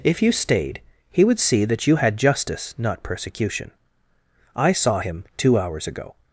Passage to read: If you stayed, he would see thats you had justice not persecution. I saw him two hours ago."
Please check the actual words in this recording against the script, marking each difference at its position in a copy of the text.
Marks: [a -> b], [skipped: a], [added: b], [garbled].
If you stayed, he would see [thats -> that] you had justice not persecution. I saw him two hours ago."